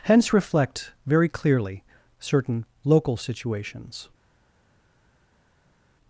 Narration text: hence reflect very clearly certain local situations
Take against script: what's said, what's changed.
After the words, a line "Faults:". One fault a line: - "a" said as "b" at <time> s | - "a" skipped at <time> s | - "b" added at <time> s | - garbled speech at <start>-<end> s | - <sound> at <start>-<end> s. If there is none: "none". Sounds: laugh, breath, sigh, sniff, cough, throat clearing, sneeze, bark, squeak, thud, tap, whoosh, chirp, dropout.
hence reflect very clearly certain local situations
Faults:
none